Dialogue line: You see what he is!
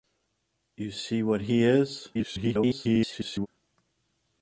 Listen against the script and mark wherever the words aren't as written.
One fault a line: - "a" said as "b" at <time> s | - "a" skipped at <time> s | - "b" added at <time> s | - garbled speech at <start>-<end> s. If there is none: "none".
- garbled speech at 2.1-3.5 s